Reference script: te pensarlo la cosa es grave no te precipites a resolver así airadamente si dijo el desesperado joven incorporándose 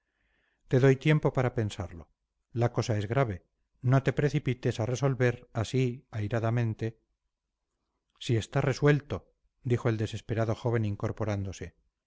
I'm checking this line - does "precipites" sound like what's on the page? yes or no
yes